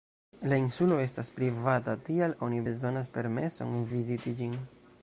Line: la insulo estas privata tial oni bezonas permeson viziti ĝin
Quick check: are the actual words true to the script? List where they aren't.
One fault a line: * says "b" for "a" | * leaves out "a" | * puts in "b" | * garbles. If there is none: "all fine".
all fine